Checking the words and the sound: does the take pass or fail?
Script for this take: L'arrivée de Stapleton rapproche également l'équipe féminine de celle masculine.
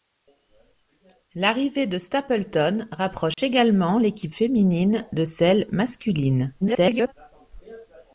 fail